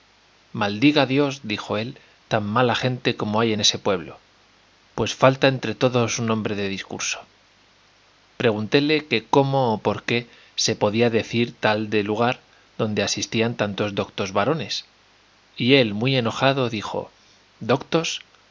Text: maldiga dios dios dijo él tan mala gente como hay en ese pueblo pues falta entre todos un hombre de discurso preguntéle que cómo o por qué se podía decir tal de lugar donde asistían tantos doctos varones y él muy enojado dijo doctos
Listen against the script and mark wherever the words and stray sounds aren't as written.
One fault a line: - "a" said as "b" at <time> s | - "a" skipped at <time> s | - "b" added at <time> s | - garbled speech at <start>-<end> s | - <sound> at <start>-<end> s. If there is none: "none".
- "dios" skipped at 1.4 s